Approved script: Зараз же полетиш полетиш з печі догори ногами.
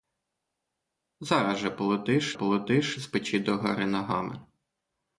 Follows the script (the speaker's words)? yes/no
yes